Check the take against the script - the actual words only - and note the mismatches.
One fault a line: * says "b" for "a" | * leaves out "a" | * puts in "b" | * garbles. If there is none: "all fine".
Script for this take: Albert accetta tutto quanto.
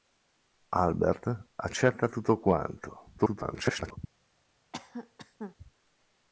* garbles